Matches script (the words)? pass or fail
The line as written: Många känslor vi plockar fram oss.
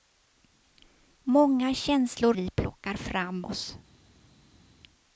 pass